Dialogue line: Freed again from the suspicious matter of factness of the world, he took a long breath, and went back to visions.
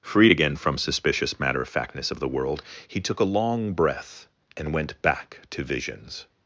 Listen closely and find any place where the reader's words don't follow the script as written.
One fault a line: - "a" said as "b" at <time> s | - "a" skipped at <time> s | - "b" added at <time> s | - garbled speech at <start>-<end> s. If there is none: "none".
- "the" skipped at 0.8 s